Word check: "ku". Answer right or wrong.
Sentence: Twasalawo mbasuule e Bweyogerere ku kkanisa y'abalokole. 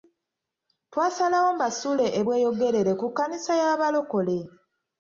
right